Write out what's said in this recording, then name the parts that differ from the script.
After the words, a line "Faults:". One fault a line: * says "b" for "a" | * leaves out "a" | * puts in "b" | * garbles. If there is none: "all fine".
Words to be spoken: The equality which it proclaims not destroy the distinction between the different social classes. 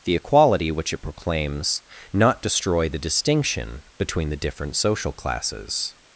The equality which it proclaims not destroy the distinction between the different social classes.
Faults:
all fine